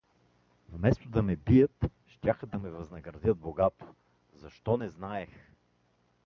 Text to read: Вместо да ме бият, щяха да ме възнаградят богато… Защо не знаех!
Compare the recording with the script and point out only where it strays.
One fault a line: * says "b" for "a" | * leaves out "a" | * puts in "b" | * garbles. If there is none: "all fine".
all fine